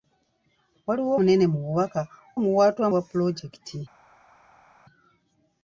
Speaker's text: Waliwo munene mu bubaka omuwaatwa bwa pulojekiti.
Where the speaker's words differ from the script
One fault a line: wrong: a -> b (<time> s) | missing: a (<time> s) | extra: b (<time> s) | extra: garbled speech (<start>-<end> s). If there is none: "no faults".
no faults